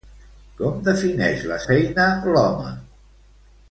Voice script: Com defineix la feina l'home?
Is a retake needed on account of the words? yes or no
no